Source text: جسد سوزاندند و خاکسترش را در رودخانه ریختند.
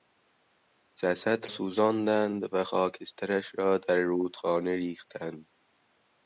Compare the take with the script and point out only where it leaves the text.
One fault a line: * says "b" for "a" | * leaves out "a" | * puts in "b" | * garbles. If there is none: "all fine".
all fine